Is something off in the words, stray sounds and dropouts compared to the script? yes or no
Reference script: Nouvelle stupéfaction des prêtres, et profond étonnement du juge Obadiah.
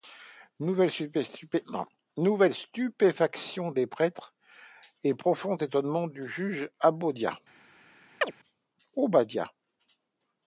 yes